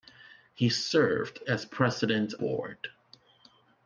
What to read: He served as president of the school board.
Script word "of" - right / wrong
wrong